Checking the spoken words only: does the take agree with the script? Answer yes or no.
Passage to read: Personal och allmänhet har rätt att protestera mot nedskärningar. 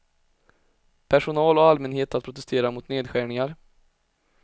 no